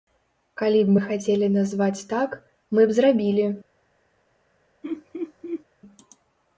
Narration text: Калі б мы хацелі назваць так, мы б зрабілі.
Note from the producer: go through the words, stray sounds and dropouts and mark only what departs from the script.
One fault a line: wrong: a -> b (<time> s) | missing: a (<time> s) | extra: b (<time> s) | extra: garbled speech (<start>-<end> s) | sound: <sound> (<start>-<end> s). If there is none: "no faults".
sound: laugh (4.8-5.6 s)